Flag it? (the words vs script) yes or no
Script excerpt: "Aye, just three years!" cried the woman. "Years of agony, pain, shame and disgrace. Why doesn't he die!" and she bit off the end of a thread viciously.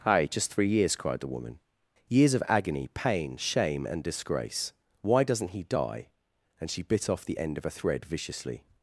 no